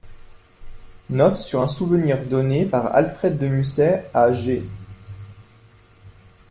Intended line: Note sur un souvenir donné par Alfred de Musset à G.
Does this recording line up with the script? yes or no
yes